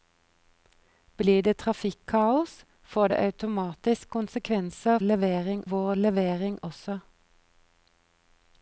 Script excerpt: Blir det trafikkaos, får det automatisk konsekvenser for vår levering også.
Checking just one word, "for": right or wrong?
wrong